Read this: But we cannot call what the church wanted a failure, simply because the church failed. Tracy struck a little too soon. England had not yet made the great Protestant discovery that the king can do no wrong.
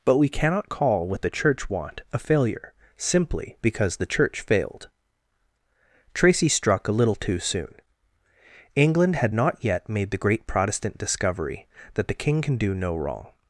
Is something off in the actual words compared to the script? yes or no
yes